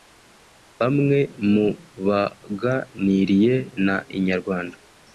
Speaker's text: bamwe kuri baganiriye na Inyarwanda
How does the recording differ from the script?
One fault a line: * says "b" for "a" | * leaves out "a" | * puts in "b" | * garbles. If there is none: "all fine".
* says "mu" for "kuri"